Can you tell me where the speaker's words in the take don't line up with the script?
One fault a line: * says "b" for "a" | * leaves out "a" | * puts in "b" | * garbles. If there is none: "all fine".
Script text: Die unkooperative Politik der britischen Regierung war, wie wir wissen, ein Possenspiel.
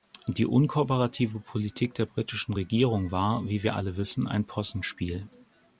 * puts in "alle"